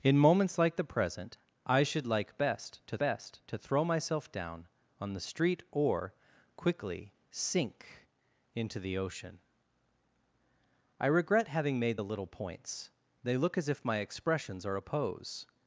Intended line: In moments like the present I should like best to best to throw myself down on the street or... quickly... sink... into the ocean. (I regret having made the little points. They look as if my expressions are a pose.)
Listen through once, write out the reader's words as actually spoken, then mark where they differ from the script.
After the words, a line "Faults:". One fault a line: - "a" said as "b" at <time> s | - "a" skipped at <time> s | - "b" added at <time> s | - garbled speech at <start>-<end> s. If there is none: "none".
In moments like the present I should like best to best to throw myself down on the street or... quickly... sink... into the ocean. (I regret having made the little points. They look as if my expressions are a pose.)
Faults:
none